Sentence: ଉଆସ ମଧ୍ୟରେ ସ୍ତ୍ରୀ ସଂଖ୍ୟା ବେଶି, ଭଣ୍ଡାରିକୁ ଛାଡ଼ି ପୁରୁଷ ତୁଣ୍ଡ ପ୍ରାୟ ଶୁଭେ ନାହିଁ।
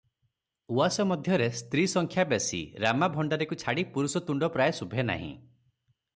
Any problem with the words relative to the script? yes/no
yes